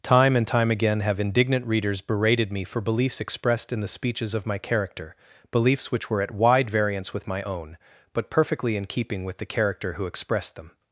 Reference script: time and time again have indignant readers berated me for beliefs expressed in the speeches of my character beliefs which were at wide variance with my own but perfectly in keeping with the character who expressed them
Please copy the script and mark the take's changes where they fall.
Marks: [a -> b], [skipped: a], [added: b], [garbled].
time and time again have indignant readers berated me for beliefs expressed in the speeches of my character beliefs which were at wide variance with my own but perfectly in keeping with the character who expressed them